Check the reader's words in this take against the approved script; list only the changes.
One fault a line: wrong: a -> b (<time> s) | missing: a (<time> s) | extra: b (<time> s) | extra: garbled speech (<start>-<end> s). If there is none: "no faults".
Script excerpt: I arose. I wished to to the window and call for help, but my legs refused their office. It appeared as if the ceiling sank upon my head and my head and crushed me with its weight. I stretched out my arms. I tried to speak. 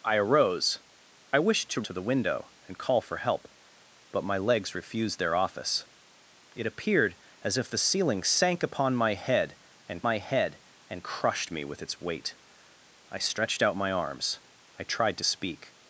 no faults